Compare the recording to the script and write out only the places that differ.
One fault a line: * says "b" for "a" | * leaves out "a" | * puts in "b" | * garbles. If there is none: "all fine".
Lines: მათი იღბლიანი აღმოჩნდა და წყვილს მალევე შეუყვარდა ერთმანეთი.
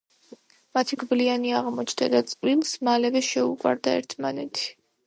all fine